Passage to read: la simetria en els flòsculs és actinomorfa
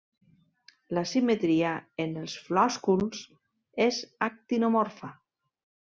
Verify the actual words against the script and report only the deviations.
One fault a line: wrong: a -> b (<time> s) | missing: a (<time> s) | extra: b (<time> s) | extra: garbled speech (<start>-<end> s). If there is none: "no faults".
no faults